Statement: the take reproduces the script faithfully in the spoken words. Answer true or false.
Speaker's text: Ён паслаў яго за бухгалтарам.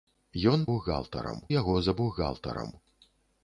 false